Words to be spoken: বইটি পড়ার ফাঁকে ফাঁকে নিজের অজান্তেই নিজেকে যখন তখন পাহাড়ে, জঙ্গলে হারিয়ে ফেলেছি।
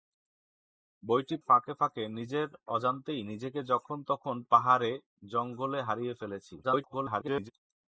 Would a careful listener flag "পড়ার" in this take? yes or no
yes